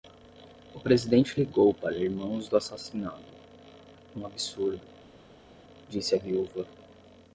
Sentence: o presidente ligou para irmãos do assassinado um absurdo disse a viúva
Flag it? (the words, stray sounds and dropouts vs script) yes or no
no